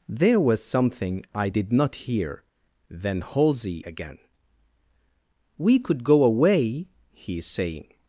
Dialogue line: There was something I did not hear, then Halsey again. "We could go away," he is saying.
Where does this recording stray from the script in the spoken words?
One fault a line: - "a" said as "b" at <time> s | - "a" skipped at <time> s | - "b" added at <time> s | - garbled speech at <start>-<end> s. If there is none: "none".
none